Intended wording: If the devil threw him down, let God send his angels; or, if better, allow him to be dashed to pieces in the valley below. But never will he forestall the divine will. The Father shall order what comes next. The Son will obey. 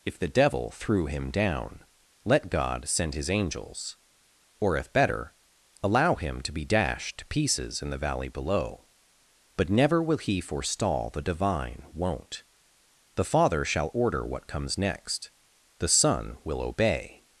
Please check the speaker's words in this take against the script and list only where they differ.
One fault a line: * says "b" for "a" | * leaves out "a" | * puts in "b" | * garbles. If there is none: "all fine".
* says "won't" for "will"